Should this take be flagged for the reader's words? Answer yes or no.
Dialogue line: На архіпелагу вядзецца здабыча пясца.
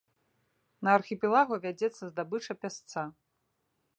no